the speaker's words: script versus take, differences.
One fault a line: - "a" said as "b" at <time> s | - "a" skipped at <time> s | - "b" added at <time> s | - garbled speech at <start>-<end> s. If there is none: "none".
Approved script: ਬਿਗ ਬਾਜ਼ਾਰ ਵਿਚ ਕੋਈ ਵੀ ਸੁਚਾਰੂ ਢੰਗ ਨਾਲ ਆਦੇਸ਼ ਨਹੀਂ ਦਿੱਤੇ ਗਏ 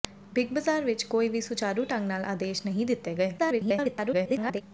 - garbled speech at 3.4-4.6 s